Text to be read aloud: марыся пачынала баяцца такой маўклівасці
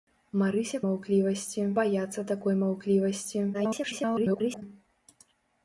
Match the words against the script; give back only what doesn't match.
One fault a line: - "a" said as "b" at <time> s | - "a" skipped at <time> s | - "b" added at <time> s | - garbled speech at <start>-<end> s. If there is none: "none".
- "пачынала" said as "маўклівасці" at 0.9 s
- garbled speech at 3.5-4.6 s